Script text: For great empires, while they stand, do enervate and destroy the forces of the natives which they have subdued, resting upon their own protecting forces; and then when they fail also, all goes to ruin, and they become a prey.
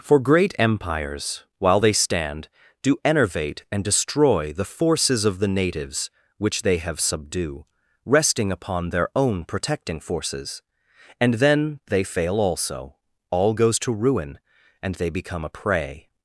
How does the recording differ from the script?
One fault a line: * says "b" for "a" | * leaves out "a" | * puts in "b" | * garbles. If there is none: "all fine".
* says "subdue" for "subdued"
* leaves out "when"